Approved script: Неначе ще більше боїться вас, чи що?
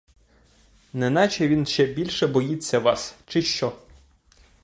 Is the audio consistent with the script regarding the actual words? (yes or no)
no